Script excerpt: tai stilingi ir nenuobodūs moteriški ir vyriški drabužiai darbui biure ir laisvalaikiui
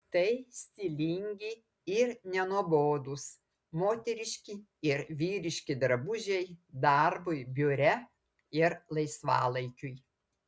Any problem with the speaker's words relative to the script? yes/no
no